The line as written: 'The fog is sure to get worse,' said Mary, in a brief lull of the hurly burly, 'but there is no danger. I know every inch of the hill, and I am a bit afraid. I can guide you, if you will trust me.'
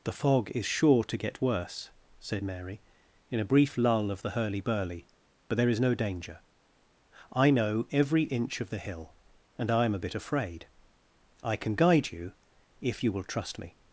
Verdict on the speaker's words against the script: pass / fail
pass